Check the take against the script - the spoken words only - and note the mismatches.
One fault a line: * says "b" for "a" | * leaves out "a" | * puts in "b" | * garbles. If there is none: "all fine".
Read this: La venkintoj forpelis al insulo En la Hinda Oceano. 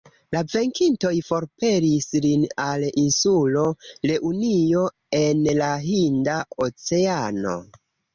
* puts in "lin"
* puts in "Reunio"